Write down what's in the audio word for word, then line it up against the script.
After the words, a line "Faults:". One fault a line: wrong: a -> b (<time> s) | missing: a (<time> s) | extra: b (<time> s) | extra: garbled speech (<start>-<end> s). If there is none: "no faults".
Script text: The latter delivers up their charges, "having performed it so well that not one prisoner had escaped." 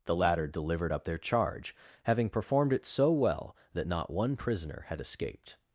The latter delivered up their charge, "having performed it so well that not one prisoner had escaped."
Faults:
wrong: delivers -> delivered (0.5 s)
wrong: charges -> charge (1.2 s)